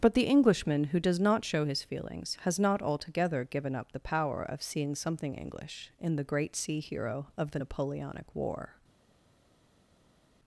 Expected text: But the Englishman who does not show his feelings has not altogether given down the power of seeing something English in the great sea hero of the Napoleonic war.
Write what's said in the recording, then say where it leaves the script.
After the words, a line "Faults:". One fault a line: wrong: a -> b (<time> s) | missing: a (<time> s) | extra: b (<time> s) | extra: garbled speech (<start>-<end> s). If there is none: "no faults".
But the Englishman who does not show his feelings has not altogether given up the power of seeing something English in the great sea hero of the Napoleonic war.
Faults:
wrong: down -> up (3.8 s)